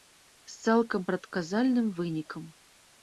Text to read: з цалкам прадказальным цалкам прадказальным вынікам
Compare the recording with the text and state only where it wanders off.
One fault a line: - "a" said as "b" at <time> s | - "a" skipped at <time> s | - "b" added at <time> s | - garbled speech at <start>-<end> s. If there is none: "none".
- "цалкам прадказальным" skipped at 1.9 s